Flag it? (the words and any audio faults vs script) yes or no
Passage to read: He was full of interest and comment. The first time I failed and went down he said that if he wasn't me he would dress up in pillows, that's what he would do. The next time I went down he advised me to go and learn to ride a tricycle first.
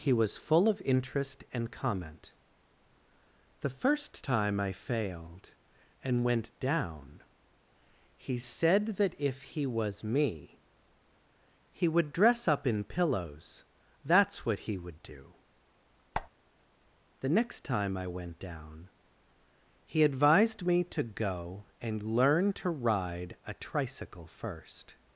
yes